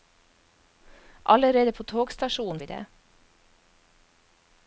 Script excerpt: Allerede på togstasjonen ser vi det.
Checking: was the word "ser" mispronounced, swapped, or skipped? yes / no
yes